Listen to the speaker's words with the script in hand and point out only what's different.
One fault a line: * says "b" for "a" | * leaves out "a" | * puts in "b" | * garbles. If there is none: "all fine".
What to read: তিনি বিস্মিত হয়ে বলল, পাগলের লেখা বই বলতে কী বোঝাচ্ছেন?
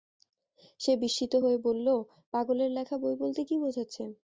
* says "সে" for "তিনি"